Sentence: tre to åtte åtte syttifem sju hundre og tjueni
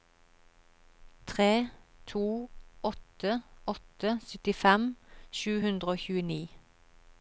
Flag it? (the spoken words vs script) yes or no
no